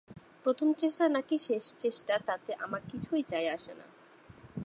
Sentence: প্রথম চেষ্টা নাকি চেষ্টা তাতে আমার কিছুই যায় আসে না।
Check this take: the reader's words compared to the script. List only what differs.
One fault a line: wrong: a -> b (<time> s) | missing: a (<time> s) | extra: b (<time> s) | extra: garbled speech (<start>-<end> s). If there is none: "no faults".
extra: শেষ (1.4 s)